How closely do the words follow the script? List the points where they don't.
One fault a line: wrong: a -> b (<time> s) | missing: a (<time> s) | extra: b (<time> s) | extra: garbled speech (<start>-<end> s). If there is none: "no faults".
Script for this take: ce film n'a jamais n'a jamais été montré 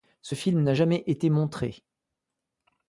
missing: n'a jamais (1.0 s)